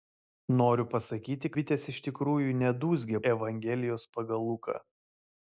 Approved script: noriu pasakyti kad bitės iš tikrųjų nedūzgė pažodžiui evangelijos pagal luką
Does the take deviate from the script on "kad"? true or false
true